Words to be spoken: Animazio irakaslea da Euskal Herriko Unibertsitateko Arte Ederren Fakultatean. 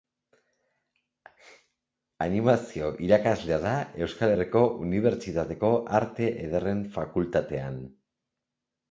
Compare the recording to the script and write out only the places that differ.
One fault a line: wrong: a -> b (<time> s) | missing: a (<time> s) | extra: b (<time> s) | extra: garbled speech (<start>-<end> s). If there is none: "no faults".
no faults